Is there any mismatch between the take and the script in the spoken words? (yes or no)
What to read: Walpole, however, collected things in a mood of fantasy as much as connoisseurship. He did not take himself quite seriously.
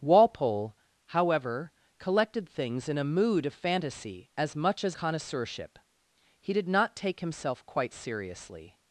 no